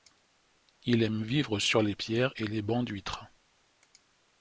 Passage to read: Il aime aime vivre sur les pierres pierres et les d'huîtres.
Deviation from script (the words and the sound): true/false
true